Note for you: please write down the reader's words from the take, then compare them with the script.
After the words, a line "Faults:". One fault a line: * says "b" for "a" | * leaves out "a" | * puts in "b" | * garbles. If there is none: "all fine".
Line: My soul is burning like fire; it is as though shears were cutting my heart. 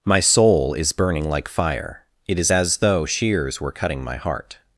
My soul is burning like fire; it is as though shears were cutting my heart.
Faults:
all fine